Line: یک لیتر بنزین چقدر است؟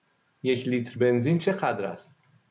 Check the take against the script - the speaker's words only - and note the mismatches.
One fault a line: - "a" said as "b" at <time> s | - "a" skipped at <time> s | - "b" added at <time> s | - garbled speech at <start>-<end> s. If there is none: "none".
none